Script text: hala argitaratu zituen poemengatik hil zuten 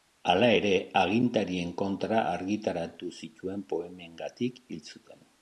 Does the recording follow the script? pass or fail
fail